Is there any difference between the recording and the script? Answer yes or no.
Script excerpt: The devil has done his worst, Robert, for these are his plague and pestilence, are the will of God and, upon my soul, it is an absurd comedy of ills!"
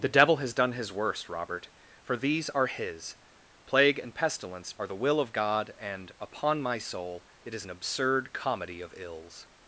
no